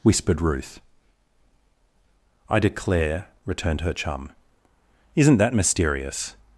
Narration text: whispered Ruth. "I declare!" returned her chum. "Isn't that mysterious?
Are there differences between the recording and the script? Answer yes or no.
no